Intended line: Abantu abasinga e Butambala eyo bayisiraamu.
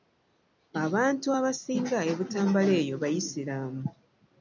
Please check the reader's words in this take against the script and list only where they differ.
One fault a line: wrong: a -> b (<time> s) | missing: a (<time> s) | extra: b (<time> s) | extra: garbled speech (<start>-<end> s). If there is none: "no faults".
no faults